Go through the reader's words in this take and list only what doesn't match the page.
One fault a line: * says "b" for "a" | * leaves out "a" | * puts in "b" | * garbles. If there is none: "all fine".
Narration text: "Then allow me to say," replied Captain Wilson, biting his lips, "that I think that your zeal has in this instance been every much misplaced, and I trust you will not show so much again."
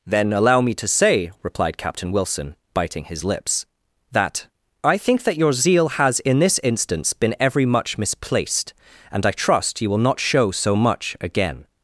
all fine